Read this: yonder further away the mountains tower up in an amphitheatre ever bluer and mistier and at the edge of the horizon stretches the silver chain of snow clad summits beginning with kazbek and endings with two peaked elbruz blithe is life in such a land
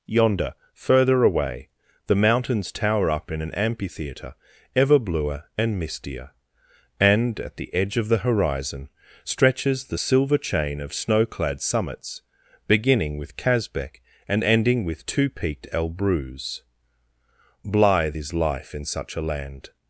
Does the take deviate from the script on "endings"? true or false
true